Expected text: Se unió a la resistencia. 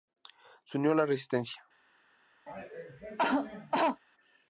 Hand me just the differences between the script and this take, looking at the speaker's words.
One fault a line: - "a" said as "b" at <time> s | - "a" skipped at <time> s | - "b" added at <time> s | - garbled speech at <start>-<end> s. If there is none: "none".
none